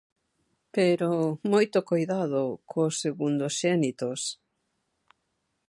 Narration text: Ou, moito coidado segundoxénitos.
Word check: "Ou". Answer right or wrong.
wrong